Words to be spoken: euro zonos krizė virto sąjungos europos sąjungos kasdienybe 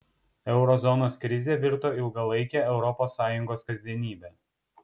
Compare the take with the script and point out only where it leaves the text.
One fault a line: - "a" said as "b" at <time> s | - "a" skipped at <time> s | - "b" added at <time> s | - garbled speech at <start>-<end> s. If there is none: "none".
- "sąjungos" said as "ilgalaike" at 2.0 s